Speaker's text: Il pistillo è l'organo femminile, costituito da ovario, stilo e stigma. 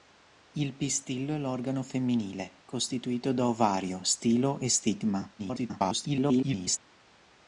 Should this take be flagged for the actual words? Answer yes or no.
yes